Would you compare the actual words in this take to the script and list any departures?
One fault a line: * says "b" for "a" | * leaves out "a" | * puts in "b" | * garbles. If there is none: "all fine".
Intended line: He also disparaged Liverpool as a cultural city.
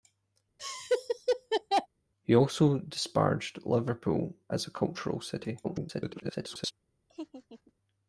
* garbles